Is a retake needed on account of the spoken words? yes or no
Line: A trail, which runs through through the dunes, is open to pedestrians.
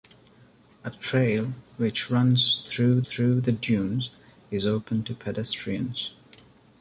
no